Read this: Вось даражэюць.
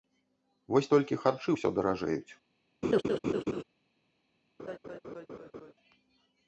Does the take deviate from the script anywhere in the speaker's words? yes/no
yes